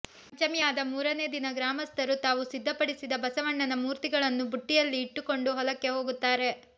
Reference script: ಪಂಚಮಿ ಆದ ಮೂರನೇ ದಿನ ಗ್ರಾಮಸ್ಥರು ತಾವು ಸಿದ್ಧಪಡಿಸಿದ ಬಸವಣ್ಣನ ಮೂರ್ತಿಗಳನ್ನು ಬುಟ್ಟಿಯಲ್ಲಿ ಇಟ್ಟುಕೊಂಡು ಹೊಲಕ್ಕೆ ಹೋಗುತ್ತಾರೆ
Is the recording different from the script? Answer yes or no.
no